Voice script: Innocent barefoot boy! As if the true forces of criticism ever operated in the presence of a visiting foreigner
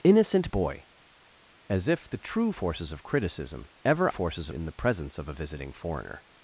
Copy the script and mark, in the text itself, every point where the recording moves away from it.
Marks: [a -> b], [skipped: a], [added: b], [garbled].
Innocent [skipped: barefoot] boy! As if the true forces of criticism ever [operated -> forces] in the presence of a visiting foreigner